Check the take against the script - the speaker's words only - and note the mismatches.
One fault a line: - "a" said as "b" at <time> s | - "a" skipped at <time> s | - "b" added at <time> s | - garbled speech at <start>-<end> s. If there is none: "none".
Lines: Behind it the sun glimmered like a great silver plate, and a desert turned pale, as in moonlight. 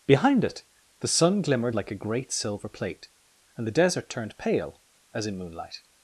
- "a" said as "the" at 3.7 s